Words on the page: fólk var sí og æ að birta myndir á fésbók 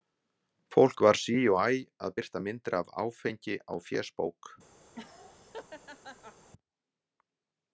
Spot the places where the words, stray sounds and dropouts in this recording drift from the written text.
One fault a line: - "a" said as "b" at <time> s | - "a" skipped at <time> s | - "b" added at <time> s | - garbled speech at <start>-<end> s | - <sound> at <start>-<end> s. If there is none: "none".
- "af áfengi" added at 2.8 s
- laugh at 4.9-6.5 s